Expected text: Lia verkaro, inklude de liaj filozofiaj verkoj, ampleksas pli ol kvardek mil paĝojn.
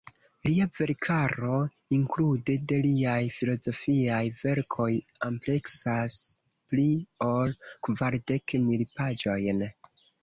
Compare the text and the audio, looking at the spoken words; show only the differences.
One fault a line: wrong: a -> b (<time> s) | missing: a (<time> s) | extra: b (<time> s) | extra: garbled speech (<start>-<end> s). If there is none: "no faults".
no faults